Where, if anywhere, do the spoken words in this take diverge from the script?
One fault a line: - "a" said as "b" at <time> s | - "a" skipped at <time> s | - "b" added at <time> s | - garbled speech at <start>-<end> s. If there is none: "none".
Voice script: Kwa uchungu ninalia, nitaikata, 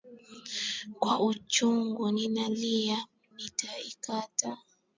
none